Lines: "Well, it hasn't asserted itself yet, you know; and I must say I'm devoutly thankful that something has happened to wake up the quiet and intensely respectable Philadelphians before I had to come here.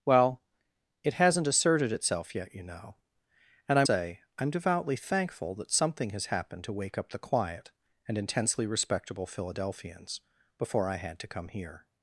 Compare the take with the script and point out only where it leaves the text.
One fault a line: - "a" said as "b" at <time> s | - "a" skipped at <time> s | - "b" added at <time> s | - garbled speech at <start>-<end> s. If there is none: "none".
- "must" skipped at 3.8 s